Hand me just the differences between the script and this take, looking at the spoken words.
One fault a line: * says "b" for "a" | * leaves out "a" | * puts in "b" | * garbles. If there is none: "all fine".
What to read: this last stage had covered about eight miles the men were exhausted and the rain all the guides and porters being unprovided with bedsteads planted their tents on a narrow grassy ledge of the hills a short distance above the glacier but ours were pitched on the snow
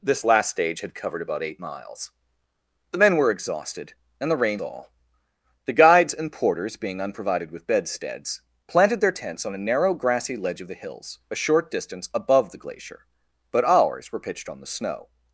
all fine